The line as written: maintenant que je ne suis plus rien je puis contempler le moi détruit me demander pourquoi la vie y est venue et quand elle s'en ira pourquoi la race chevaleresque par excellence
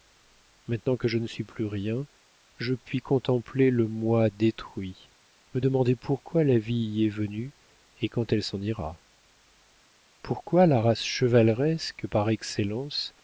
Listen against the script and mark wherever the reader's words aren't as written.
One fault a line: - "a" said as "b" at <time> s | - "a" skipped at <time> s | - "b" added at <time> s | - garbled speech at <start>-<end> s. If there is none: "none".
none